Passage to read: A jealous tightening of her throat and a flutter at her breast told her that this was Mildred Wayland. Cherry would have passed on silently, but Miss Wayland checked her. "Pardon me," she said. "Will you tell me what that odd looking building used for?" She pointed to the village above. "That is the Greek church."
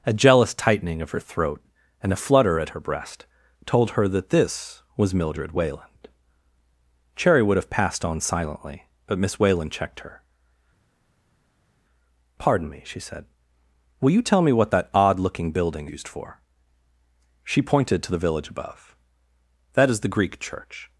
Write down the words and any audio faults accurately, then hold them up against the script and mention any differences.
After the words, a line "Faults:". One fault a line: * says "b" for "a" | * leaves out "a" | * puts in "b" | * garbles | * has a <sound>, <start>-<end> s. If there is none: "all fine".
A jealous tightening of her throat and a flutter at her breast told her that this was Mildred Wayland. Cherry would have passed on silently, but Miss Wayland checked her. "Pardon me," she said. "Will you tell me what that odd looking building used for?" She pointed to the village above. "That is the Greek church."
Faults:
all fine